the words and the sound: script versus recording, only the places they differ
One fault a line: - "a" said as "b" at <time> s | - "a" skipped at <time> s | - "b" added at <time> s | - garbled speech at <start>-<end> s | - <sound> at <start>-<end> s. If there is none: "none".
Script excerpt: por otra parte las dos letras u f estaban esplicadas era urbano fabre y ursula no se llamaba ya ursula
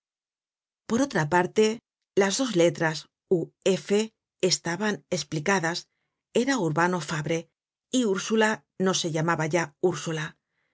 none